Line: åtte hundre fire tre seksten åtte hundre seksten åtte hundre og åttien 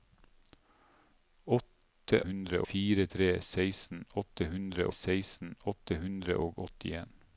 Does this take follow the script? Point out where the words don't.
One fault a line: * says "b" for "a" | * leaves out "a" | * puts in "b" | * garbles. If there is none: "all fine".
all fine